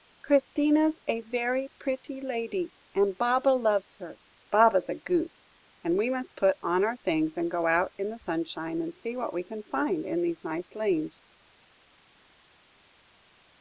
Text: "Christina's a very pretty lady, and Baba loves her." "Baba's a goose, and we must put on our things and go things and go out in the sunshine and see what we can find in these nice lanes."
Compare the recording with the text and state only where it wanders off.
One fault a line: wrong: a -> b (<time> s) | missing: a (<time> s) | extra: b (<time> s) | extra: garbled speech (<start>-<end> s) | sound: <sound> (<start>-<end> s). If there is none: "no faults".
missing: things and go (7.7 s)